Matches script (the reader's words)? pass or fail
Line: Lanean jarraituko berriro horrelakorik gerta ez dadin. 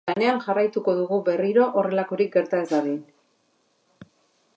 fail